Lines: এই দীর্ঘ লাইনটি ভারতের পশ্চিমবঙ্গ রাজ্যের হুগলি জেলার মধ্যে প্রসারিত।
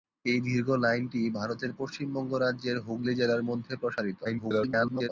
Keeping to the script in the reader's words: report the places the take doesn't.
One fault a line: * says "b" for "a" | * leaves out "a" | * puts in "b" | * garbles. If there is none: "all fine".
* garbles